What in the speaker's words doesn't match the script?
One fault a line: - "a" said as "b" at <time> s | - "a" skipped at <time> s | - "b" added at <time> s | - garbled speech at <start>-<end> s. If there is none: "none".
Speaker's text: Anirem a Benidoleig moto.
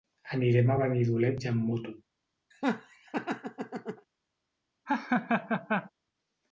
- "amb" added at 1.5 s